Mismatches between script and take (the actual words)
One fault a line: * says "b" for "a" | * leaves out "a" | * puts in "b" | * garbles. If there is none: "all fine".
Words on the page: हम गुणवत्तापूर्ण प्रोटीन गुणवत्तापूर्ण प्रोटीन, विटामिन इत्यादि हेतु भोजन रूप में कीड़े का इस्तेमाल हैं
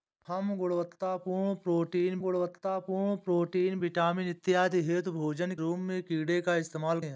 all fine